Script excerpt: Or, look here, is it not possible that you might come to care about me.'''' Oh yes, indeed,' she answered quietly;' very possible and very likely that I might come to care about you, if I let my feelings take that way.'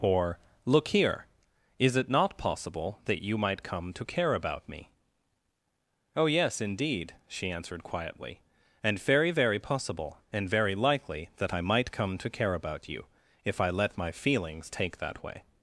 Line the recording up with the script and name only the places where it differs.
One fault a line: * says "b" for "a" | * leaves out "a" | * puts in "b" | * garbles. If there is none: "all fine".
* puts in "and very"